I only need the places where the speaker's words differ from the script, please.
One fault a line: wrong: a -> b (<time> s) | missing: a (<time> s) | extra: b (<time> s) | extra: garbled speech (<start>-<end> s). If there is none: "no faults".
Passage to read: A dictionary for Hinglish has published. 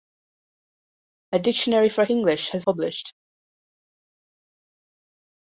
no faults